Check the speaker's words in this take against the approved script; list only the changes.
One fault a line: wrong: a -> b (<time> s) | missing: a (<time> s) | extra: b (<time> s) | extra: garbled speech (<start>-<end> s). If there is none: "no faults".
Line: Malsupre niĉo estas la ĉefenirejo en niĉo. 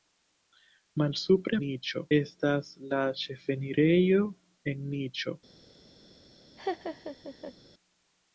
no faults